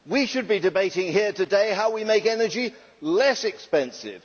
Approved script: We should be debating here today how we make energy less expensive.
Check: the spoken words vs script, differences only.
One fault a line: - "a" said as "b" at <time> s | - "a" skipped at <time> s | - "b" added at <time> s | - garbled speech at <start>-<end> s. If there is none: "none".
none